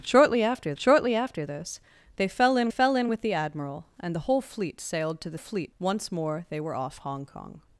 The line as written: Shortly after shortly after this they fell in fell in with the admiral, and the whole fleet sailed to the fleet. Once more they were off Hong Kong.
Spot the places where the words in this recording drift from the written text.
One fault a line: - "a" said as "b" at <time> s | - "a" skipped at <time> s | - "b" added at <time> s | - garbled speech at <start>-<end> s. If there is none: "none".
none